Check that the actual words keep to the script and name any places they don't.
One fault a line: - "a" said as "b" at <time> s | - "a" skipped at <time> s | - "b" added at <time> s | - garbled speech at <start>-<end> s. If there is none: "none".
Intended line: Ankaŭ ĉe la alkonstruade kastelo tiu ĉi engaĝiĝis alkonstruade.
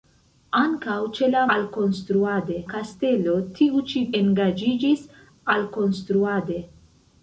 none